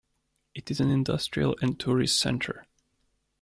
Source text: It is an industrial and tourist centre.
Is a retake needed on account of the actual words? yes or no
no